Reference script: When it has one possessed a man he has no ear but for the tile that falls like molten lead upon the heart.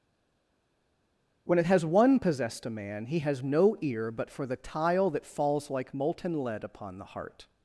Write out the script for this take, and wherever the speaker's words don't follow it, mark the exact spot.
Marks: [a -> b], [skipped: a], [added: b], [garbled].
When it has one possessed a man he has no ear but for the tile that falls like molten lead upon the heart.